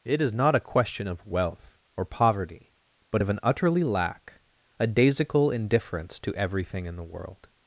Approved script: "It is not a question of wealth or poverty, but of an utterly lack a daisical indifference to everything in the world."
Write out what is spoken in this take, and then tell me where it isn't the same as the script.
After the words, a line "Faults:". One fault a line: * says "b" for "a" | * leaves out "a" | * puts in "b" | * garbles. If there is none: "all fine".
"It is not a question of wealth or poverty, but of an utterly lack a daisical indifference to everything in the world."
Faults:
all fine